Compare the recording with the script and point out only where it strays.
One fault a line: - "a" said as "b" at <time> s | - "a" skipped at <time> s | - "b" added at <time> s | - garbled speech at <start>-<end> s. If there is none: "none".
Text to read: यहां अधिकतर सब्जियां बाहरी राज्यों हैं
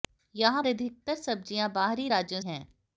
none